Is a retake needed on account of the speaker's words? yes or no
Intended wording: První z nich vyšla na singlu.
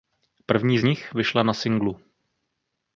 no